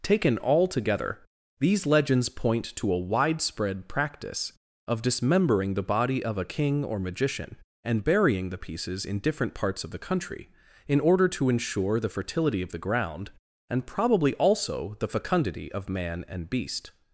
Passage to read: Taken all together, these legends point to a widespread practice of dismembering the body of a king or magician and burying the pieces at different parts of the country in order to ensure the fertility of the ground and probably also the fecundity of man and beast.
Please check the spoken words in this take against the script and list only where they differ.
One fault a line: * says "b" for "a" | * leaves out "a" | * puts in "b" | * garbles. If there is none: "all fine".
* says "in" for "at"